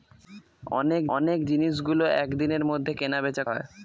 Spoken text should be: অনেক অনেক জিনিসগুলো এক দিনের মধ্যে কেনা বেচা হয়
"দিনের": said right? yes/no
yes